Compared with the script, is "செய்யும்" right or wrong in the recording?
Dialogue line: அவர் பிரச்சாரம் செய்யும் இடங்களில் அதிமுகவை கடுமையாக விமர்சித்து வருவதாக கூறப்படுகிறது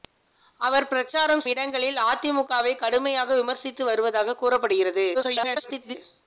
wrong